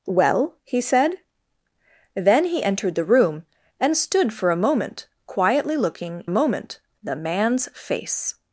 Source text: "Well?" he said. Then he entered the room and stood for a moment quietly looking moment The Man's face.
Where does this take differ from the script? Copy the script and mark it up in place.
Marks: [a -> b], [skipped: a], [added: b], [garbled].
"Well?" he said. Then he entered the room and stood for a moment quietly looking moment The Man's face.